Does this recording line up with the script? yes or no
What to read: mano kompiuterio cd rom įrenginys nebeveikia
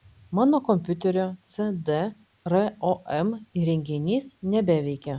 yes